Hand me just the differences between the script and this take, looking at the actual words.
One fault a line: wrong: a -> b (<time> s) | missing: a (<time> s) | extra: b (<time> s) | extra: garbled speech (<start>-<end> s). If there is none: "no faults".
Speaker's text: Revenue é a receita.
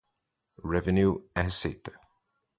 missing: a (1.4 s)